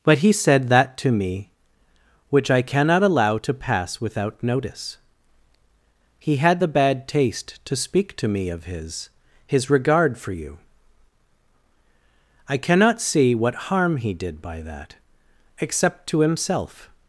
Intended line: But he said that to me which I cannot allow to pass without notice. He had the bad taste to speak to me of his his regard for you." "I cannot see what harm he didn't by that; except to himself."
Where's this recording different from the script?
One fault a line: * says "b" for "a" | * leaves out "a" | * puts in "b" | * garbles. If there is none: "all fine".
* says "did" for "didn't"